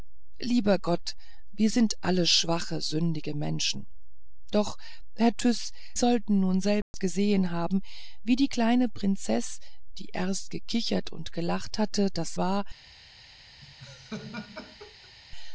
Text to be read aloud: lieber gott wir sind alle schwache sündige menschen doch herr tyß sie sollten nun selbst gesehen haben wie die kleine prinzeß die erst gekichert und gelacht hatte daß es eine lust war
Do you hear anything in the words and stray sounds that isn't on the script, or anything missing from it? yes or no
yes